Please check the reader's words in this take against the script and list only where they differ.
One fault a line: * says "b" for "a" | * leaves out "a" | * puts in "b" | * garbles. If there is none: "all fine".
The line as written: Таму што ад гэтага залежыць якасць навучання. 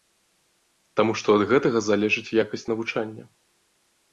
all fine